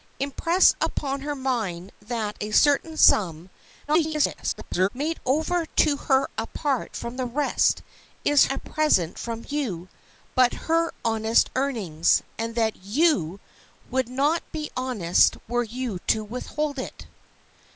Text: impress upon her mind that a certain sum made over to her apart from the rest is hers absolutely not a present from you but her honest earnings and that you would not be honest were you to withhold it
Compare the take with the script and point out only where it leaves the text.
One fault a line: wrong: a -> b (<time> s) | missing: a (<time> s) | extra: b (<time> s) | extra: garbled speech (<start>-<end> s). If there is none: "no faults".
extra: garbled speech (3.9-4.9 s)
missing: hers absolutely not (8.5 s)